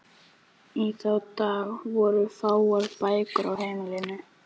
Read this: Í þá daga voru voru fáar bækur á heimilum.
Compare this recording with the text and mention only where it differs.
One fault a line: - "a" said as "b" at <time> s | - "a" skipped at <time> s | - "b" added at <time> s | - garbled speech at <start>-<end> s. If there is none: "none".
- "voru" skipped at 2.2 s